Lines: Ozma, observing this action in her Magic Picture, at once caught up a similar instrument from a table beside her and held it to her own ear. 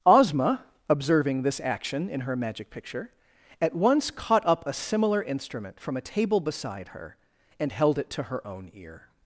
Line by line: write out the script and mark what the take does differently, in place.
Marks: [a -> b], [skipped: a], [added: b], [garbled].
Ozma, observing this action in her Magic Picture, at once caught up a similar instrument from a table beside her and held it to her own ear.